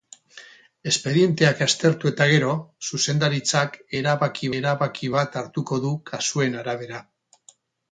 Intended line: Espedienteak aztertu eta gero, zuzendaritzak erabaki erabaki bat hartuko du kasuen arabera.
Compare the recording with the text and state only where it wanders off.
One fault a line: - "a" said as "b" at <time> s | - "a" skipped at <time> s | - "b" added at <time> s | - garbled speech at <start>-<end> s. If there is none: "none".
none